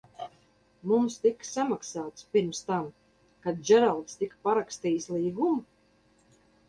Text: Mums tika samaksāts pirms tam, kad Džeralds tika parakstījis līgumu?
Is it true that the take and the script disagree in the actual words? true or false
false